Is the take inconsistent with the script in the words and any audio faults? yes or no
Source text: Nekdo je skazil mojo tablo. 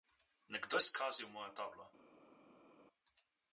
no